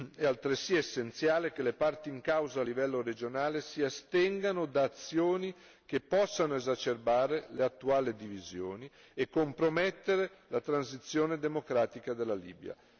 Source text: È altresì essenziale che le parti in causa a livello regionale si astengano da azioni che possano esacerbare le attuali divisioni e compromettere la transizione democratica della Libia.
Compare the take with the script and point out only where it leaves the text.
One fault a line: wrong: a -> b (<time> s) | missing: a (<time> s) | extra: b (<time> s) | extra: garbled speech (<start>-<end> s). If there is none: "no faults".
no faults